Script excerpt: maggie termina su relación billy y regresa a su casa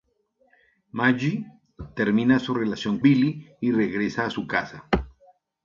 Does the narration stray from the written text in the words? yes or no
no